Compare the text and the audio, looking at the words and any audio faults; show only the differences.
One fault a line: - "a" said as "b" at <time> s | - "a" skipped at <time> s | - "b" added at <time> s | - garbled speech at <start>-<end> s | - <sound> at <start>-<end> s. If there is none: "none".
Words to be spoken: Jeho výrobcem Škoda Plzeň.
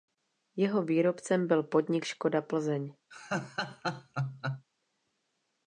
- "byl podnik" added at 1.5 s
- laugh at 3.1-4.7 s